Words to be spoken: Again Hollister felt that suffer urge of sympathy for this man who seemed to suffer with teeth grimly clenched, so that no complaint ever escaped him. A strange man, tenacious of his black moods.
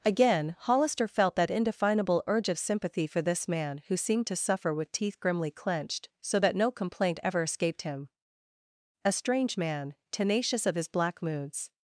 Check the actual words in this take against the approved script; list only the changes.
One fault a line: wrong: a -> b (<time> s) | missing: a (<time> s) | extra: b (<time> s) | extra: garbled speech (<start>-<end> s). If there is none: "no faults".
wrong: suffer -> indefinable (1.5 s)